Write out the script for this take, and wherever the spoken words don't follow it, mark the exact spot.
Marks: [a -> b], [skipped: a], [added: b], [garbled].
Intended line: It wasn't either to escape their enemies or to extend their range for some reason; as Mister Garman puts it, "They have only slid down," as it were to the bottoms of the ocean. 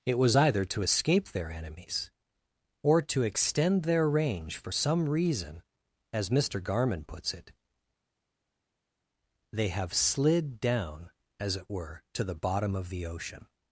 It [wasn't -> was] either to escape their enemies or to extend their range for some reason; as Mister Garman puts it, "They have [skipped: only] slid down," as it were to the [bottoms -> bottom] of the ocean.